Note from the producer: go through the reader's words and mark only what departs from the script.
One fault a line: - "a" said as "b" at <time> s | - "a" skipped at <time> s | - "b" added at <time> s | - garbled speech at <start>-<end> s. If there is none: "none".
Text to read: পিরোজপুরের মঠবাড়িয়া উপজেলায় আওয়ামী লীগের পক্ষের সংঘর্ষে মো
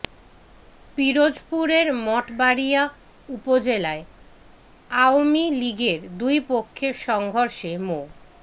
- "দুই" added at 6.2 s